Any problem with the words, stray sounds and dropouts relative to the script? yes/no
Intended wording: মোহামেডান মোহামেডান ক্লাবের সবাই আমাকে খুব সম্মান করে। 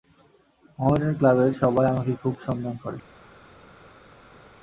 yes